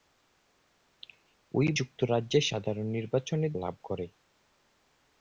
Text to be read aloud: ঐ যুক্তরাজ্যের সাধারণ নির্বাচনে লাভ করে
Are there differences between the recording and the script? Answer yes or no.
no